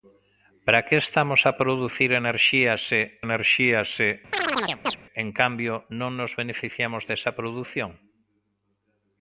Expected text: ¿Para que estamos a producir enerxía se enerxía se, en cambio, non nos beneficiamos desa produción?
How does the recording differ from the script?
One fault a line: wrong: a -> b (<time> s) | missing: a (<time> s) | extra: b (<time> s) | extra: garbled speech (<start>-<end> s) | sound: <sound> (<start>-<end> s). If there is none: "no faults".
sound: chirp (4.3-5.0 s)